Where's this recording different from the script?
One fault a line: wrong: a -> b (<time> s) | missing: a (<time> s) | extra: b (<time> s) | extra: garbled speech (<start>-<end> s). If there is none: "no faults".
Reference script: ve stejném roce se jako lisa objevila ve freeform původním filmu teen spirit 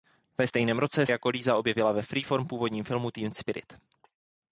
missing: se (1.1 s)